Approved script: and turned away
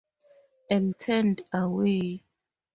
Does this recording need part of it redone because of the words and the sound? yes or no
no